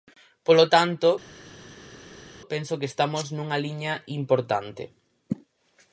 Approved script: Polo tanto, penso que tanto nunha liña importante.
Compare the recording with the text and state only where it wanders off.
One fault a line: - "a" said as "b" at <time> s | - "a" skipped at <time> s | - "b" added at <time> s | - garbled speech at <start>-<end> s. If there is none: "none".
- "tanto" said as "estamos" at 2.9 s